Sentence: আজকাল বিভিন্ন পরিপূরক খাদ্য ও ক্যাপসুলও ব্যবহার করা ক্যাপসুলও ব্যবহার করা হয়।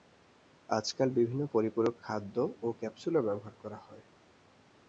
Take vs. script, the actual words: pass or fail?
fail